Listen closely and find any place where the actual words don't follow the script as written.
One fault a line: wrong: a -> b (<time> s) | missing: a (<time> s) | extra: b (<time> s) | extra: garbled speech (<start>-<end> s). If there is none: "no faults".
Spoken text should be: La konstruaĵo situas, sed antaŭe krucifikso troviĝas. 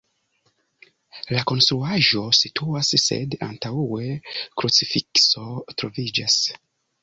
no faults